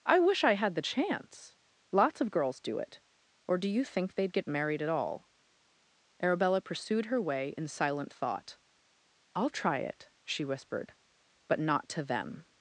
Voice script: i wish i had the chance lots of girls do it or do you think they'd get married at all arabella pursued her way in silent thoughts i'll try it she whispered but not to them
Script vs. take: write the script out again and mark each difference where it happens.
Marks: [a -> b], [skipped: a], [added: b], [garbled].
i wish i had the chance lots of girls do it or do you think they'd get married at all arabella pursued her way in silent [thoughts -> thought] i'll try it she whispered but not to them